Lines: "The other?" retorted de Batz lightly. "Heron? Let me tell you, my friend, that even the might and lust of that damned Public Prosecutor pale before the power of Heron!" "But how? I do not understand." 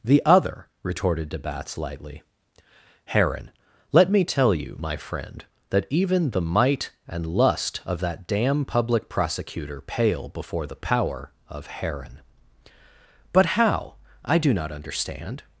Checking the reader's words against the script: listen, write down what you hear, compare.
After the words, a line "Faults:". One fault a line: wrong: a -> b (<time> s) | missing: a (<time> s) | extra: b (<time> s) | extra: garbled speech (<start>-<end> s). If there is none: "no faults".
"The other?" retorted de Batz lightly. "Heron? Let me tell you, my friend, that even the might and lust of that damn Public Prosecutor pale before the power of Heron!" "But how? I do not understand."
Faults:
wrong: damned -> damn (8.3 s)